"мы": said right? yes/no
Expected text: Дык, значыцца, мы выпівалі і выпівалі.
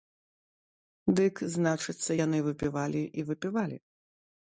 no